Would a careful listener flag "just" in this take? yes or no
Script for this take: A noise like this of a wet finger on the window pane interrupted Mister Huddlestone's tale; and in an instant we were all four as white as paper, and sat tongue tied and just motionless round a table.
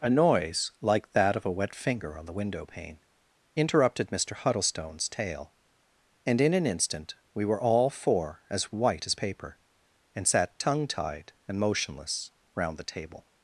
yes